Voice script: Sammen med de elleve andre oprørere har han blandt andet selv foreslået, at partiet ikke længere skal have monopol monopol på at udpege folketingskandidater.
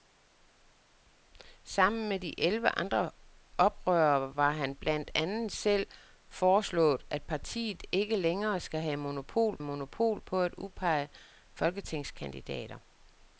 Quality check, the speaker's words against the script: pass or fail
pass